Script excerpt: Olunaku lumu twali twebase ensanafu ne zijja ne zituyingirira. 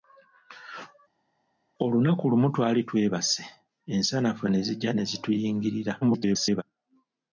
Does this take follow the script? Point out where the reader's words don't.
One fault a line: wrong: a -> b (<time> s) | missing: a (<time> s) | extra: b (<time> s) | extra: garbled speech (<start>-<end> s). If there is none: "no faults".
extra: garbled speech (6.0-6.6 s)